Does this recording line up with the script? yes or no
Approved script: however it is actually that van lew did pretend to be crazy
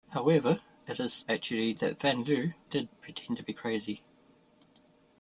yes